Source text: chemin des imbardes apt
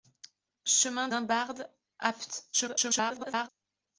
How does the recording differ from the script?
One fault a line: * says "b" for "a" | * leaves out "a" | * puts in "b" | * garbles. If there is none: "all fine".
* leaves out "des"
* garbles